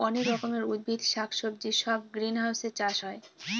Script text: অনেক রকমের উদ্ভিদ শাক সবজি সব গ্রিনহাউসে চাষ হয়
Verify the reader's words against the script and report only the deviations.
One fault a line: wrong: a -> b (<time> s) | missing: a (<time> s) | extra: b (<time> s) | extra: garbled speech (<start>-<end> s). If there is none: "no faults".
no faults